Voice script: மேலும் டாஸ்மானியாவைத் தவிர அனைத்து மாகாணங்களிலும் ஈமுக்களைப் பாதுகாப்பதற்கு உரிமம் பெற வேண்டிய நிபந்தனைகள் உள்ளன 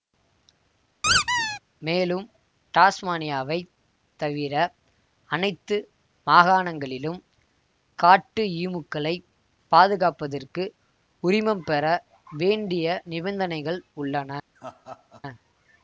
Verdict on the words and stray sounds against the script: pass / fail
fail